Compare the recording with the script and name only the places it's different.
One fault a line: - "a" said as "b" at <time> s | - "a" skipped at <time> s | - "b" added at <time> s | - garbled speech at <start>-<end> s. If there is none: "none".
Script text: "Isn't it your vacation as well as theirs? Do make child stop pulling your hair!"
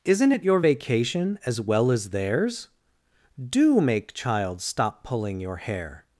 none